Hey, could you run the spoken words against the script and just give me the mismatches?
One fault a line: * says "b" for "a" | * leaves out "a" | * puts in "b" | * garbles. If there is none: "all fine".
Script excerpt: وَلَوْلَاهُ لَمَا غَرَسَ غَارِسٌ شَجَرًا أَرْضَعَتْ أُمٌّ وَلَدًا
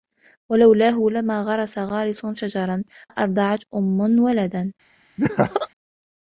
all fine